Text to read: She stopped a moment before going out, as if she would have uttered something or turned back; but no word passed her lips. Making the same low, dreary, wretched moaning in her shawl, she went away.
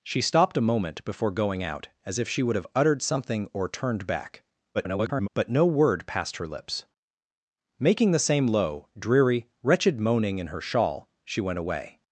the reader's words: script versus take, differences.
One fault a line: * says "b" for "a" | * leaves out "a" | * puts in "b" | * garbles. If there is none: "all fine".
* garbles